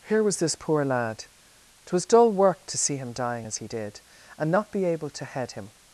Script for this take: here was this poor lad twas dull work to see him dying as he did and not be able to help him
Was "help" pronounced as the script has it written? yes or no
no